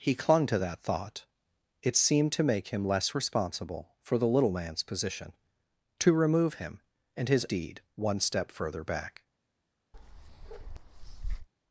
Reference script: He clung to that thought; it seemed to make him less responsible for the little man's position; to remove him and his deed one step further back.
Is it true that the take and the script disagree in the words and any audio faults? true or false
true